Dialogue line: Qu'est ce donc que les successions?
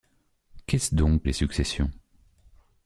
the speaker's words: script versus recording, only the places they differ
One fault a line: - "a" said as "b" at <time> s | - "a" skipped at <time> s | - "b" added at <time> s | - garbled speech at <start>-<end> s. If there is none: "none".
- "que" skipped at 1.2 s